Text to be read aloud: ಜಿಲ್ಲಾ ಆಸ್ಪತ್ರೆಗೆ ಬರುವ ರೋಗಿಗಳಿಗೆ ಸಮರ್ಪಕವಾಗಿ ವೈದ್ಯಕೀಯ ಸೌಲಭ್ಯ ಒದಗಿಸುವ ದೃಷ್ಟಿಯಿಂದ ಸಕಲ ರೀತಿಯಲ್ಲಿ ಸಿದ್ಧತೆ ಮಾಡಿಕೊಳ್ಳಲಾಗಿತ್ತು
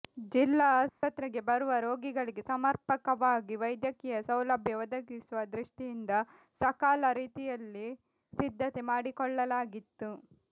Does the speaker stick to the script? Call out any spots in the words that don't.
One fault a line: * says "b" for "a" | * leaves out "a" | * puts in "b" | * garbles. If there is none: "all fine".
all fine